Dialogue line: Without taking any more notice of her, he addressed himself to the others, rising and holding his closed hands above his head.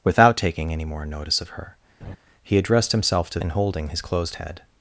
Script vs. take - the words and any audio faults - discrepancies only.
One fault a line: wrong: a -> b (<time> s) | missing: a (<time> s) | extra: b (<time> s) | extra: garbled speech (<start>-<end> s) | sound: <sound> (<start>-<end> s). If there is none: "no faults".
sound: laugh (2.0-2.2 s)
missing: the others rising (3.4 s)
missing: hands above his (4.4 s)